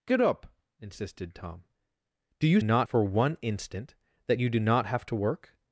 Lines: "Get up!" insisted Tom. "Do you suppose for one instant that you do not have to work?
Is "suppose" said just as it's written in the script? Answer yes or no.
no